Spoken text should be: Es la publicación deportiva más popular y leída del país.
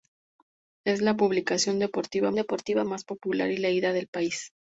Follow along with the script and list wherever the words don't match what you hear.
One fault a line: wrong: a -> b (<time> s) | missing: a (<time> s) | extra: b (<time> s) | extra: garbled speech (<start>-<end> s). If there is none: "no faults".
extra: deportiva (2.3 s)